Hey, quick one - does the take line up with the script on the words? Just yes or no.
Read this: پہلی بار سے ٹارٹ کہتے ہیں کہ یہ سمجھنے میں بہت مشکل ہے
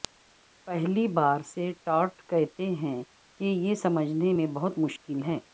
yes